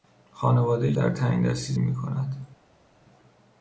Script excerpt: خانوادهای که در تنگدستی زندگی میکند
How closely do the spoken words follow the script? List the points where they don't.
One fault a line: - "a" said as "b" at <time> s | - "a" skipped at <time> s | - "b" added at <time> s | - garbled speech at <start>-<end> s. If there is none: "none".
- "که" skipped at 0.9 s
- "زندگی" skipped at 1.7 s